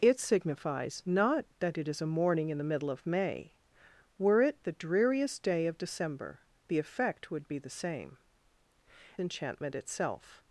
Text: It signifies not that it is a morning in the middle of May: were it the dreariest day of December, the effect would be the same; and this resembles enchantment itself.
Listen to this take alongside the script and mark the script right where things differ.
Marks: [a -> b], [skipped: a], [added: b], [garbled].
It signifies not that it is a morning in the middle of May: were it the dreariest day of December, the effect would be the same; [skipped: and this resembles] enchantment itself.